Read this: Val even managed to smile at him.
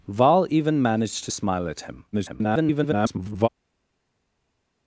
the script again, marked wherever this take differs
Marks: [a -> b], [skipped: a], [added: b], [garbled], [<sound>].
Val even managed to smile at him. [garbled]